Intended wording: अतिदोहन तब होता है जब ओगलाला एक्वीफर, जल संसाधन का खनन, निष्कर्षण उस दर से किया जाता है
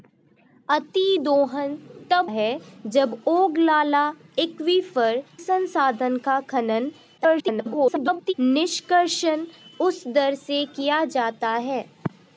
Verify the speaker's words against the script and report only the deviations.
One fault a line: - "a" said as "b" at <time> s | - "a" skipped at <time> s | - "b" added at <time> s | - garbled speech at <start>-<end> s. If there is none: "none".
- "होता" skipped at 2.3 s
- "जल" skipped at 5.2 s
- garbled speech at 7.2-8.3 s